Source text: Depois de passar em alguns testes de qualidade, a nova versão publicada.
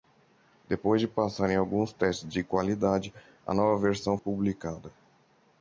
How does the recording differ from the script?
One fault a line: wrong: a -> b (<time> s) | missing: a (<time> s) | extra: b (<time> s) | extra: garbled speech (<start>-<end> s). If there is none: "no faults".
no faults